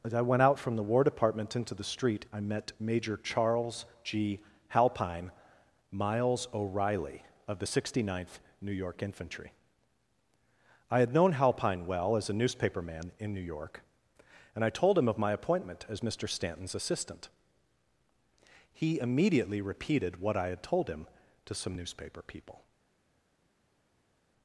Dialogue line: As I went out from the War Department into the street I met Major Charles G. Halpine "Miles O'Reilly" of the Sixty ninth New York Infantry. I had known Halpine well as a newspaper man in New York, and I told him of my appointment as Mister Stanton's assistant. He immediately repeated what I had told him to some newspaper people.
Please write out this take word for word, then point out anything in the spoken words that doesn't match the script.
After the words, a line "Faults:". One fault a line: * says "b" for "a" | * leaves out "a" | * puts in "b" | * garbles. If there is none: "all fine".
As I went out from the War Department into the street I met Major Charles G. Halpine "Miles O'Reilly" of the Sixty ninth New York Infantry. I had known Halpine well as a newspaper man in New York, and I told him of my appointment as Mister Stanton's assistant. He immediately repeated what I had told him to some newspaper people.
Faults:
all fine